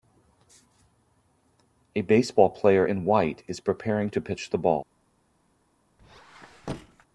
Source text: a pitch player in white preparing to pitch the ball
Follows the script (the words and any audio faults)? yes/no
no